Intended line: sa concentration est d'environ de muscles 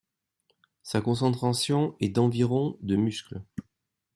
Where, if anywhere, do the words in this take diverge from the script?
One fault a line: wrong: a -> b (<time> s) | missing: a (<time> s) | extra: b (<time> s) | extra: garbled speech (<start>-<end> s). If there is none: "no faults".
no faults